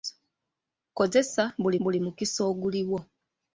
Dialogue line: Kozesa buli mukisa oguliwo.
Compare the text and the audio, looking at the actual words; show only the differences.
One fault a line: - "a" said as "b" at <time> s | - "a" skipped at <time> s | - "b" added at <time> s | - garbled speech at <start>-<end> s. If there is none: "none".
- "buli" added at 1.8 s